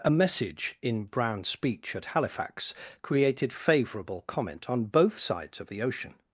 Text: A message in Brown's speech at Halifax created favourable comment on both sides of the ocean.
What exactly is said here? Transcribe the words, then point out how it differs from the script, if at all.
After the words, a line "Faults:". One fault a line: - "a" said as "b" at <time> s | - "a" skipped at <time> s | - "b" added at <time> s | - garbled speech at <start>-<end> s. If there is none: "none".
A message in Brown's speech at Halifax created favourable comment on both sides of the ocean.
Faults:
none